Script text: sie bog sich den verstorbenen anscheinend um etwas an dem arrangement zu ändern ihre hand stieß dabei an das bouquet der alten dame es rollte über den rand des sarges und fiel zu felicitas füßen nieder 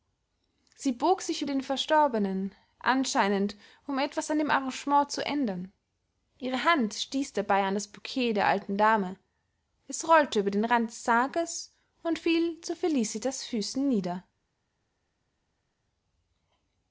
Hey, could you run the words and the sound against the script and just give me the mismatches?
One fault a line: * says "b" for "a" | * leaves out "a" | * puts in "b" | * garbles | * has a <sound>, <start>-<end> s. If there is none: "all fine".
all fine